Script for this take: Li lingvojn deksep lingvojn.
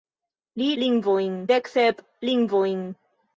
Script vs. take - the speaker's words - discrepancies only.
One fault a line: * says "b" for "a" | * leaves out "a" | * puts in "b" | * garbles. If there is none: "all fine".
all fine